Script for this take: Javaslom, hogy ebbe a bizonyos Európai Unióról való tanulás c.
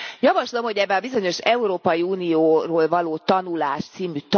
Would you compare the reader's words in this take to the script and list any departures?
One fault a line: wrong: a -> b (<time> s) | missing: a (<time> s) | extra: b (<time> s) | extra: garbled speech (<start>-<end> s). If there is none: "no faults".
no faults